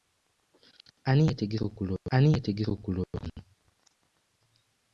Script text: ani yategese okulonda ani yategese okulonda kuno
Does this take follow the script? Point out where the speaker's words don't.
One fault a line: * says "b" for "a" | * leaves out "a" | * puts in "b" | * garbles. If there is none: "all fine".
all fine